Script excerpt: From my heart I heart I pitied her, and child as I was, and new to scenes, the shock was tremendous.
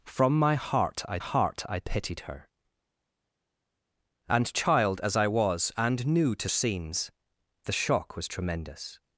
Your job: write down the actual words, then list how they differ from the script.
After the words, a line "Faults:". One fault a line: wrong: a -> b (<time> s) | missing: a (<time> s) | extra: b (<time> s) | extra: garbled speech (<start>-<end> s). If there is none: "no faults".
From my heart I heart I pitied her, and child as I was, and new to scenes, the shock was tremendous.
Faults:
no faults